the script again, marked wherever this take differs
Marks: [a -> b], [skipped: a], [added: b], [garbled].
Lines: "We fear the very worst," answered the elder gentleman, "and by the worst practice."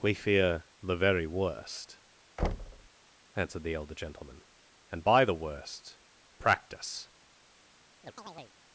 "We fear the very worst," answered the elder gentleman, "and by the worst practice."